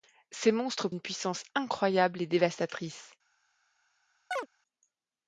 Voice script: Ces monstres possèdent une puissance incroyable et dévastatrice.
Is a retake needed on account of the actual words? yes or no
yes